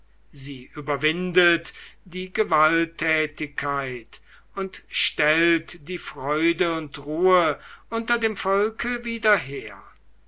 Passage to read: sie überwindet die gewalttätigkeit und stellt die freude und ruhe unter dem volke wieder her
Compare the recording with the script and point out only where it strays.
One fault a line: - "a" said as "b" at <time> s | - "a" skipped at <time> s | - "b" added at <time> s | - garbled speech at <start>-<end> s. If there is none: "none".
none